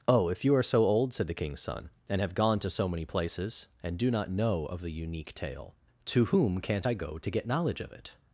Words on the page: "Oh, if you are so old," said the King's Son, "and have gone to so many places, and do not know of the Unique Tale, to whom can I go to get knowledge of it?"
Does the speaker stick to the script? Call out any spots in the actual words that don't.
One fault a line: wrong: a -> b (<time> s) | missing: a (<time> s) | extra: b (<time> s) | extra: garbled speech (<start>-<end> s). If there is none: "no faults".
wrong: can -> can't (6.6 s)